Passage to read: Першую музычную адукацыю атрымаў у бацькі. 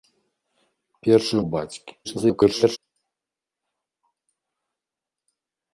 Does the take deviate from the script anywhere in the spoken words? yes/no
yes